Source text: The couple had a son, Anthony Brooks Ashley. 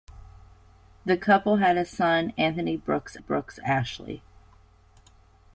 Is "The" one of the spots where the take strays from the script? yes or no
no